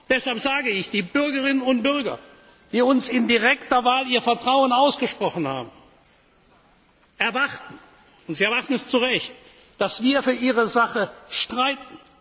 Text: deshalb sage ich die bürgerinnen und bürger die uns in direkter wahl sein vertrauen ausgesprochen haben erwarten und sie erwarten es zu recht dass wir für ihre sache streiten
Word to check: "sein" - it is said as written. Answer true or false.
false